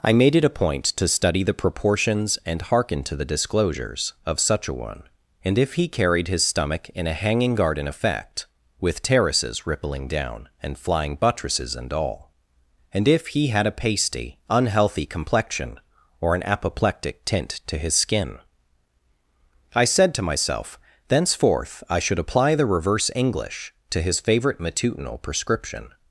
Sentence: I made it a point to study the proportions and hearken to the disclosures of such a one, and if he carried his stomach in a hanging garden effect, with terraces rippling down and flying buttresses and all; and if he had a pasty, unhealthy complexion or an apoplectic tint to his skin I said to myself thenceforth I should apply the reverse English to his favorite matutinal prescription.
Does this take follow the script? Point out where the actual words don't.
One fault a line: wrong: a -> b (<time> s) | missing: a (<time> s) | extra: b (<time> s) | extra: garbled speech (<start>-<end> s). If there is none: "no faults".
no faults